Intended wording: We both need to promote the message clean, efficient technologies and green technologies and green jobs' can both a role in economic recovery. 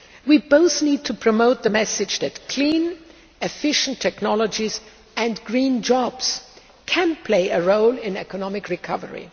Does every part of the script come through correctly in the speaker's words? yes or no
no